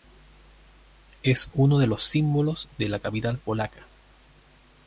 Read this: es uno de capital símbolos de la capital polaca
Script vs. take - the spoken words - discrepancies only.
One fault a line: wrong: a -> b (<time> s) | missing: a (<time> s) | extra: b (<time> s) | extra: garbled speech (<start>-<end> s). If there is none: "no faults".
wrong: capital -> los (1.9 s)